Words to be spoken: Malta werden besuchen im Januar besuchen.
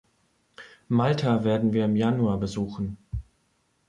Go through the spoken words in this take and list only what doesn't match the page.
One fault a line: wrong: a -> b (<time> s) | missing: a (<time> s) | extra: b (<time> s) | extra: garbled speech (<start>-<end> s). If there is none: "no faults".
wrong: besuchen -> wir (1.7 s)